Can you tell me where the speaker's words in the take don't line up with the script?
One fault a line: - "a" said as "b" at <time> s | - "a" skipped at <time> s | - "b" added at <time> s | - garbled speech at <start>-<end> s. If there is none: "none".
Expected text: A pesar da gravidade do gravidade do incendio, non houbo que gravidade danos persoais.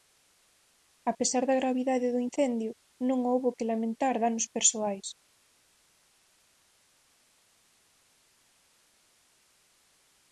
- "gravidade do" skipped at 2.2 s
- "gravidade" said as "lamentar" at 3.7 s